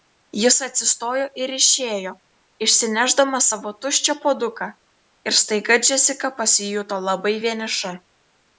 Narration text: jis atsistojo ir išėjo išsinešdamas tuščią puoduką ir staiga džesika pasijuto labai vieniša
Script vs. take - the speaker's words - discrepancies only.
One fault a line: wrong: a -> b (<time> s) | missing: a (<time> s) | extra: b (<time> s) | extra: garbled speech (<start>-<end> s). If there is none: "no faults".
extra: savo (3.5 s)